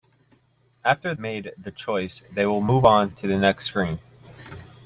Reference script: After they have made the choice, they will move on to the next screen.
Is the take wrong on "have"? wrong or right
wrong